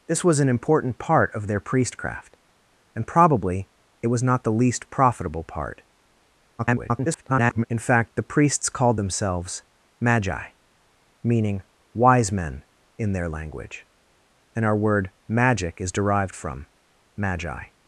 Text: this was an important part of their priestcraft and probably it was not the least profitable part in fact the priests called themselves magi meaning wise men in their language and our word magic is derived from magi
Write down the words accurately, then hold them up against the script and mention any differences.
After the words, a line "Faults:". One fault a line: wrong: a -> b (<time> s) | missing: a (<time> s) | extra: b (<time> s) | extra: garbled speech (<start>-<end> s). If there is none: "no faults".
this was an important part of their priestcraft and probably it was not the least profitable part [garbled] in fact the priests called themselves magi meaning wise men in their language and our word magic is derived from magi
Faults:
extra: garbled speech (6.6-7.7 s)